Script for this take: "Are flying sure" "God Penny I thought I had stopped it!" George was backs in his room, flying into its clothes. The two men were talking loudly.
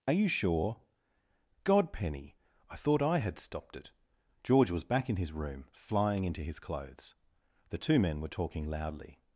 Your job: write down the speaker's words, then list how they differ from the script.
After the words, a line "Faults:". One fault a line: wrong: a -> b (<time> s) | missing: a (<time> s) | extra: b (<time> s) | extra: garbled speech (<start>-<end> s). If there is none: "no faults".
"Are you sure" "God Penny I thought I had stopped it!" George was back in his room, flying into his clothes. The two men were talking loudly.
Faults:
wrong: flying -> you (0.1 s)
wrong: backs -> back (4.8 s)
wrong: its -> his (6.4 s)